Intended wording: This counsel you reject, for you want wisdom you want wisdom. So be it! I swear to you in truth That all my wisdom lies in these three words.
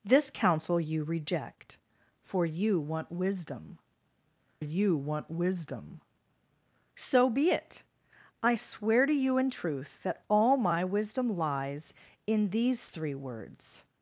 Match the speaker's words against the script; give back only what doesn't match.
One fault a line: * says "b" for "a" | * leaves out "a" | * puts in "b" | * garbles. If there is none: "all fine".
all fine